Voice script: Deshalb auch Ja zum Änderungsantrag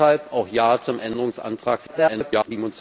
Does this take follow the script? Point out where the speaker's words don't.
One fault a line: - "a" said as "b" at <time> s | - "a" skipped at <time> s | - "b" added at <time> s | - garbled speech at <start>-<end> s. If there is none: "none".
- garbled speech at 1.9-2.5 s